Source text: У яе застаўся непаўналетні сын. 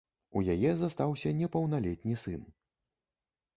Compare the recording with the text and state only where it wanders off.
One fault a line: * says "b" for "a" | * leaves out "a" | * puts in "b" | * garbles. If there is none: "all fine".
all fine